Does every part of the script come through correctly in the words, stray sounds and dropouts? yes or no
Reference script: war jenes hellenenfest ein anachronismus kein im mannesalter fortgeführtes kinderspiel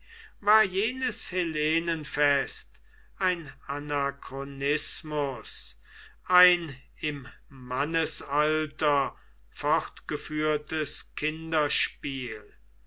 no